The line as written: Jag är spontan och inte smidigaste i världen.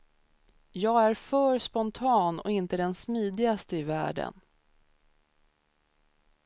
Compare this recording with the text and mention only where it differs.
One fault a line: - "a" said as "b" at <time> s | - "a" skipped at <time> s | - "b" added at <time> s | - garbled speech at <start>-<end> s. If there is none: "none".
- "för" added at 1.1 s
- "den" added at 2.8 s